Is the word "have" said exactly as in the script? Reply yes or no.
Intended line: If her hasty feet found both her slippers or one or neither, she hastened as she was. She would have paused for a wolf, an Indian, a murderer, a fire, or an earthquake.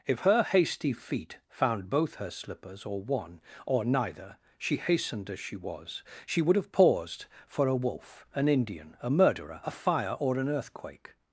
yes